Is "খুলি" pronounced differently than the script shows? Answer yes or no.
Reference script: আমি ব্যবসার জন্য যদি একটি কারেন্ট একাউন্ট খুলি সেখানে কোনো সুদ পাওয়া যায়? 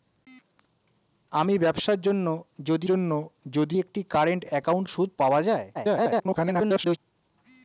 yes